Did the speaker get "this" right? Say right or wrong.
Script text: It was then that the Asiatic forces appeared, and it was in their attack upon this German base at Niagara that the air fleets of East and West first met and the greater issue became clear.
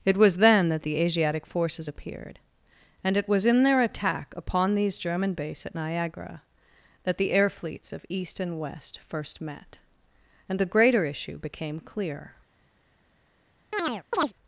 wrong